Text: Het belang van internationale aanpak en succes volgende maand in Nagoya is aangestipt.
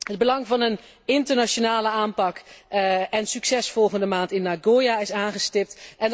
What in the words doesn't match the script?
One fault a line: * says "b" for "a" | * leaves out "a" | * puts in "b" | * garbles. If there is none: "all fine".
* puts in "een"